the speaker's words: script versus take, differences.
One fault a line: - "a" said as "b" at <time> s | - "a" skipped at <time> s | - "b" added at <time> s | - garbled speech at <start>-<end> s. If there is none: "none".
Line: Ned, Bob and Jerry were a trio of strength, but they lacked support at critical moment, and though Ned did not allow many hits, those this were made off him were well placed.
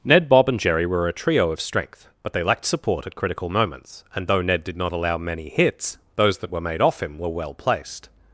- "moment" said as "moments" at 3.5 s
- "this" said as "that" at 6.4 s